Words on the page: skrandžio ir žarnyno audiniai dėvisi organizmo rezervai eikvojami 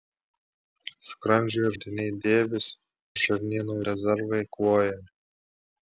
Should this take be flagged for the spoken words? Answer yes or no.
yes